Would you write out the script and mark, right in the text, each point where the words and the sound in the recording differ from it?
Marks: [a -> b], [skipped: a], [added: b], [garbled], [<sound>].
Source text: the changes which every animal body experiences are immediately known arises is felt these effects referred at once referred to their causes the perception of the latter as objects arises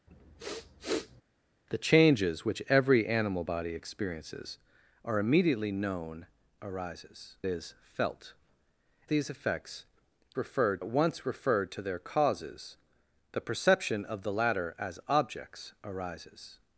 [sniff] the changes which every animal body experiences are immediately known arises is felt these effects referred at once referred to their causes the perception of the latter as objects arises